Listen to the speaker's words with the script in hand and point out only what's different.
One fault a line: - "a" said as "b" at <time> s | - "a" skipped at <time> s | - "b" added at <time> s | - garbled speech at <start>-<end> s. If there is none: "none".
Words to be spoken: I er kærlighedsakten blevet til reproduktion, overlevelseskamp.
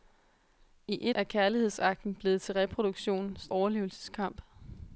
none